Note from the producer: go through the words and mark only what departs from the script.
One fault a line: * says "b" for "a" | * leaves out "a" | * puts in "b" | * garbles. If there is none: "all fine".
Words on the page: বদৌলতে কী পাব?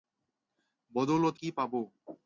all fine